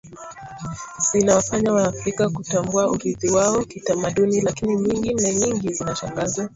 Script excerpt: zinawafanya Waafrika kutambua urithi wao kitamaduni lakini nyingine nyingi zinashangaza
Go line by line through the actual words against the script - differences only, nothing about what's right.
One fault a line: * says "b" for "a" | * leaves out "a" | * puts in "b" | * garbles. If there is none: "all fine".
all fine